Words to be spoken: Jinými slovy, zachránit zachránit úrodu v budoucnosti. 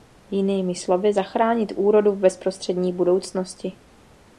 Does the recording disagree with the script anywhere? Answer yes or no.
yes